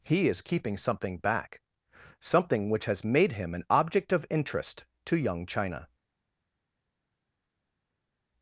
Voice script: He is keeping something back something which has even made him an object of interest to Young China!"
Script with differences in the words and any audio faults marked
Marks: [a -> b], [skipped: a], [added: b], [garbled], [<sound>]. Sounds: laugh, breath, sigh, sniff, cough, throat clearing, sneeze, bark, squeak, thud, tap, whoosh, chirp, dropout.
He is keeping something back something which has [skipped: even] made him an object of interest to Young China!"